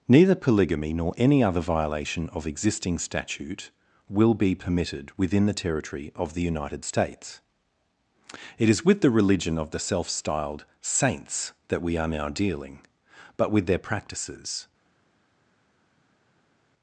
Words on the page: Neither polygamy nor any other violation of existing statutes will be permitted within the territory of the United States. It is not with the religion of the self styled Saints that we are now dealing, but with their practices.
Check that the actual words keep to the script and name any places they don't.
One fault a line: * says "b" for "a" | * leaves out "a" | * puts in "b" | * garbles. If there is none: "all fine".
* says "statute" for "statutes"
* leaves out "not"